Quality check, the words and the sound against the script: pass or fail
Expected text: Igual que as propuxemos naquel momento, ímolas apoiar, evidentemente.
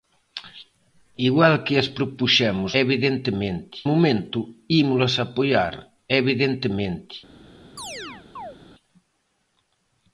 fail